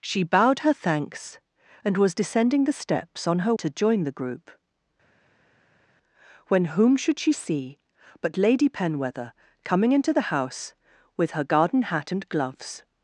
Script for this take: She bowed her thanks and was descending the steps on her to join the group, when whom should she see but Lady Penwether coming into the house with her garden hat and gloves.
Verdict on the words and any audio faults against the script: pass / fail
pass